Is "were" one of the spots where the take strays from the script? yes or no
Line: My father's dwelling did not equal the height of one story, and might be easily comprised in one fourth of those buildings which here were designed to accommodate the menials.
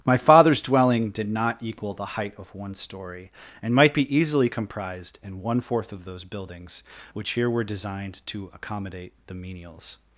no